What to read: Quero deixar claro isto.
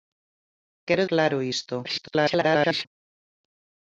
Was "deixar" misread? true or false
true